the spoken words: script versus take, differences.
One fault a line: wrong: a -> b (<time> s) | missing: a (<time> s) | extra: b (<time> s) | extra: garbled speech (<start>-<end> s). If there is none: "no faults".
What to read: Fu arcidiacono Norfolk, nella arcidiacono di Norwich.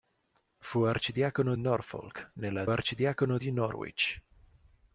no faults